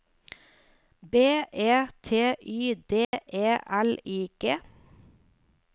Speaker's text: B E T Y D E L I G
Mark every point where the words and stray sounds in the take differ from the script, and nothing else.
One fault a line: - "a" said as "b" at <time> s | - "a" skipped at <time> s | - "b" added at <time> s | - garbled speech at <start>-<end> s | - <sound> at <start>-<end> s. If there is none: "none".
- dropout at 3.0-3.1 s